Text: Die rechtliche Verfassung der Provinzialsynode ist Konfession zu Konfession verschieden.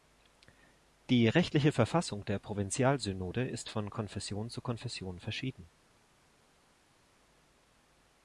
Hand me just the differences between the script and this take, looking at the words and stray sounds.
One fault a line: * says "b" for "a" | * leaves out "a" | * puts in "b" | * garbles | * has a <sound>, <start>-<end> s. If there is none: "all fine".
* puts in "von"